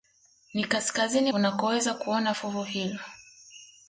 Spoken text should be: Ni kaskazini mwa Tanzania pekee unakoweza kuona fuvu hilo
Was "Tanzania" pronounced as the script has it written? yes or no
no